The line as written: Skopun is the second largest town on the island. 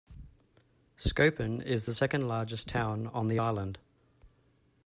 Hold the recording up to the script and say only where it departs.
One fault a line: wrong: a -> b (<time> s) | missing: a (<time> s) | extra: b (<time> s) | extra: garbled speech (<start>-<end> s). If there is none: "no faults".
no faults